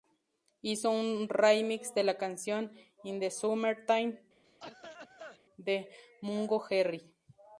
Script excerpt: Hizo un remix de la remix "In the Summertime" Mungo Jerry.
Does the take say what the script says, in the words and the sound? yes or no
no